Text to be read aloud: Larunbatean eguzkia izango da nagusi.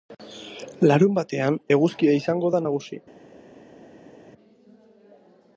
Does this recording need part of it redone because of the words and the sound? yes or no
no